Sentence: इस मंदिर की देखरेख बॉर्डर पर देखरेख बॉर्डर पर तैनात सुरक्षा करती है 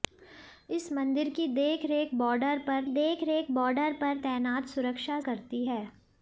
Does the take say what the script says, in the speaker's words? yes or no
yes